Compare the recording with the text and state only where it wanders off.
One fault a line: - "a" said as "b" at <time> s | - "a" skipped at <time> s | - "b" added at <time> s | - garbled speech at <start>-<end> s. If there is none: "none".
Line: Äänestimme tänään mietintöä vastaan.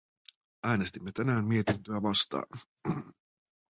none